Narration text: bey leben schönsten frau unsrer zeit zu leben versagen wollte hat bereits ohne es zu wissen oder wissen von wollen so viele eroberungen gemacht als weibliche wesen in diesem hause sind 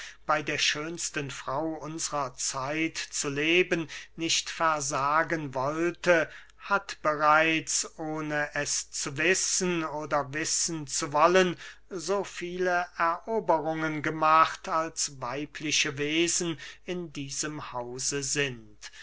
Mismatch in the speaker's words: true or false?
true